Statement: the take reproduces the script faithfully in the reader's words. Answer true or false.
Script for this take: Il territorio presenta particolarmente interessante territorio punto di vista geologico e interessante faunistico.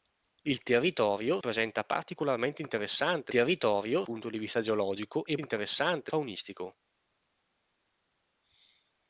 true